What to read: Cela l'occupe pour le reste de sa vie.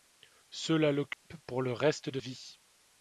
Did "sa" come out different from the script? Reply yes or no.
yes